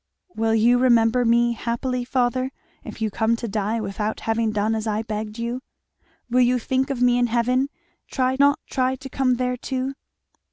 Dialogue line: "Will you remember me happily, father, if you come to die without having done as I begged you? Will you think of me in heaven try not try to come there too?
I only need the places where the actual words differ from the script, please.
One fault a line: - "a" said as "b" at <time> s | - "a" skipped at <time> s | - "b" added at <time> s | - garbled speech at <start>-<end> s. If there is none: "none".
none